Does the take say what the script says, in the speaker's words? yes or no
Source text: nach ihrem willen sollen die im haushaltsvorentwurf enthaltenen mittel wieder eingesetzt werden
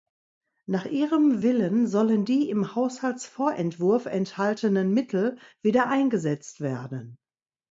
yes